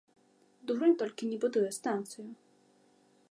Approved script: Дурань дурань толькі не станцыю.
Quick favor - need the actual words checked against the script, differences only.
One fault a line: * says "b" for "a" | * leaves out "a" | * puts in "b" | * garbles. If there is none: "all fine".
* leaves out "дурань"
* puts in "будуе"